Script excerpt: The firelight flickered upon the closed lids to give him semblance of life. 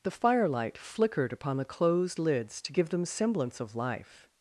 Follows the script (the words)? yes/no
no